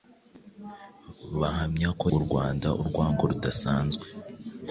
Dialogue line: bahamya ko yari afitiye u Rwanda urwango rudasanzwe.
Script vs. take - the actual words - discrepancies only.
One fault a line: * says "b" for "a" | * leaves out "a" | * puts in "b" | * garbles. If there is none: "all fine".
* leaves out "yari afitiye"